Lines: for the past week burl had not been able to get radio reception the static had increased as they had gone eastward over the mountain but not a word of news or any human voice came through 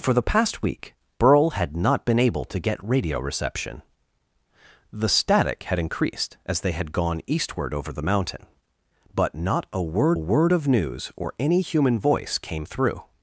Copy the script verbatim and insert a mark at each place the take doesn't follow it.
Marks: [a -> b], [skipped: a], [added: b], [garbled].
for the past week burl had not been able to get radio reception the static had increased as they had gone eastward over the mountain but not a word [added: word] of news or any human voice came through